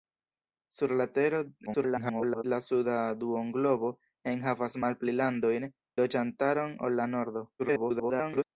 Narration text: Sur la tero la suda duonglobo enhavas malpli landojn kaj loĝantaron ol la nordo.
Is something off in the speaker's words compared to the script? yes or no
yes